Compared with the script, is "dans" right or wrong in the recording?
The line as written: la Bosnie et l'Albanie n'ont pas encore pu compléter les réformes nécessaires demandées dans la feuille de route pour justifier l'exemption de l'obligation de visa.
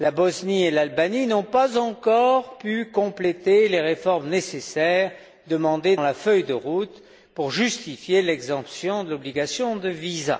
wrong